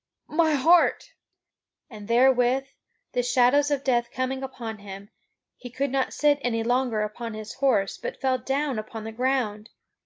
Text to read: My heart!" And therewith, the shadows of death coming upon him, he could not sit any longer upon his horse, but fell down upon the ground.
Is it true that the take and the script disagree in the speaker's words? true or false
false